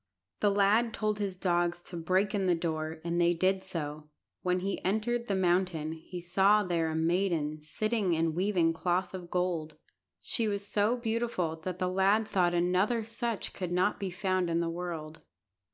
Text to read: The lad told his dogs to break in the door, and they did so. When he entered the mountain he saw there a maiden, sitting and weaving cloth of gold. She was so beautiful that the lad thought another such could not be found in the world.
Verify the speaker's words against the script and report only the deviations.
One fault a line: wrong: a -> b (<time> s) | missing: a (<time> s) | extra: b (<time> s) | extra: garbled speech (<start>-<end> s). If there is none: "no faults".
no faults